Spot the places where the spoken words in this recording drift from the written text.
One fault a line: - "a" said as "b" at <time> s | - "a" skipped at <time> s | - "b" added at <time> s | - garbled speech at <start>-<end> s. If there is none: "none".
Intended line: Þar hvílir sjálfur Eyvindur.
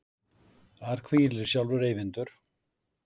none